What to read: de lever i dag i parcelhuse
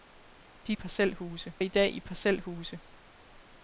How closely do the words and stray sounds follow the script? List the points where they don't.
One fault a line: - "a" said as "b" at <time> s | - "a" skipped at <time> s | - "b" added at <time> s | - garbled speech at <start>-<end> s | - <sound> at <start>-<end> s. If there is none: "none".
- "lever" said as "parcelhuse" at 0.7 s